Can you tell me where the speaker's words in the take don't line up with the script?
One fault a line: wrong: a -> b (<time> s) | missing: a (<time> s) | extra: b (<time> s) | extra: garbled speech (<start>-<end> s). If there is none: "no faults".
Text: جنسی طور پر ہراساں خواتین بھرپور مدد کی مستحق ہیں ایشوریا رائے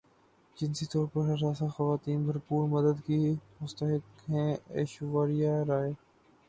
no faults